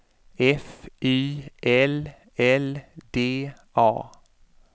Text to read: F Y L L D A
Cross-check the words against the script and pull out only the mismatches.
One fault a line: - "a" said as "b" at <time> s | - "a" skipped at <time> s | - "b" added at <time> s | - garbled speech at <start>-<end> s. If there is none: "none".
none